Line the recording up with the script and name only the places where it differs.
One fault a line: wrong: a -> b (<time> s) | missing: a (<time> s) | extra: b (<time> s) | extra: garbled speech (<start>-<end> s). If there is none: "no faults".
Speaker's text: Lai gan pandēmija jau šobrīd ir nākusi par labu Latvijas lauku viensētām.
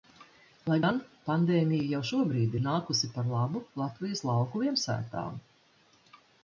no faults